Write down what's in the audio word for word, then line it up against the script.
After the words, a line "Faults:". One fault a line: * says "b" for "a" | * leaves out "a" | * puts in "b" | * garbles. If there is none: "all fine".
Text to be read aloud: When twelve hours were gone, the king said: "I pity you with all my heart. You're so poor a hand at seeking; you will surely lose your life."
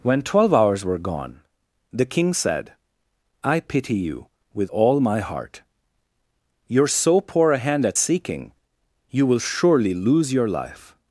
When twelve hours were gone, the king said: "I pity you with all my heart. You're so poor a hand at seeking; you will surely lose your life."
Faults:
all fine